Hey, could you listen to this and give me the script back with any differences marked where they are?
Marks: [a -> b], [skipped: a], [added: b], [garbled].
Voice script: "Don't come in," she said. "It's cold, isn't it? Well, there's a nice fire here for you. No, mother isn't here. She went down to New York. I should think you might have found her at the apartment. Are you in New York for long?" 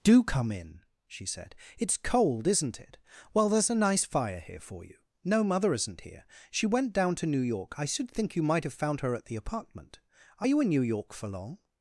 ["Don't -> Do] come in," she said. "It's cold, isn't it? Well, there's a nice fire here for you. No, mother isn't here. She went down to New York. I should think you might have found her at the apartment. Are you in New York for long?"